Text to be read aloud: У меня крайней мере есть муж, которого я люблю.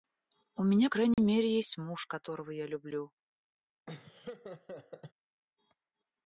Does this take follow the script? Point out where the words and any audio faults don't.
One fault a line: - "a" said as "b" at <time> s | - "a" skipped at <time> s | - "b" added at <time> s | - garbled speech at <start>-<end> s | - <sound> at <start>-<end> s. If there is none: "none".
- dropout at 1.1-1.2 s
- laugh at 3.9-5.1 s